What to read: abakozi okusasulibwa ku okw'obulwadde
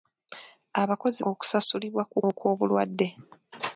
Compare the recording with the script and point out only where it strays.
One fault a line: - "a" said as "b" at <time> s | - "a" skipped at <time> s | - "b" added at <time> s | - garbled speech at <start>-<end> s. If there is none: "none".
none